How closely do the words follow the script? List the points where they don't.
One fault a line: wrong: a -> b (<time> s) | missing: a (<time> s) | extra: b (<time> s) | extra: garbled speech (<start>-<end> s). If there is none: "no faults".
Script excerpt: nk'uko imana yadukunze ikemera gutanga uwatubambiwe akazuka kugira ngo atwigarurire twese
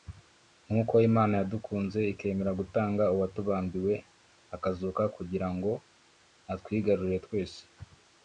no faults